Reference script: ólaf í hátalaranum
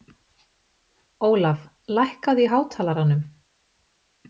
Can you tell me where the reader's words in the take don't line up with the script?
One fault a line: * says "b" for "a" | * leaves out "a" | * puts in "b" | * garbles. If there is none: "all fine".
* puts in "lækkaðu"